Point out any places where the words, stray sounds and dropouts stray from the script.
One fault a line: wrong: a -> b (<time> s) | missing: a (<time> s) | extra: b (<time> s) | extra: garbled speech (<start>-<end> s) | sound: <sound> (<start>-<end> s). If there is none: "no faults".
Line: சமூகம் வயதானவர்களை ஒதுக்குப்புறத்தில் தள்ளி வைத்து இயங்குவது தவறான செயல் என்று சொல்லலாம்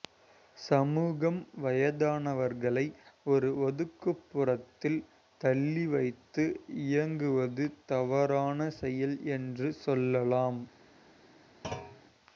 extra: ஒரு (3.2 s)
sound: thud (11.6-12.0 s)